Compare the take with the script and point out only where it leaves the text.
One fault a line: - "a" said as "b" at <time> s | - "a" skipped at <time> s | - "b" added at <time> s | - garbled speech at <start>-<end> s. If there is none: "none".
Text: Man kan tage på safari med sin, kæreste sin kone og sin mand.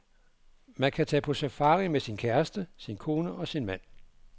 none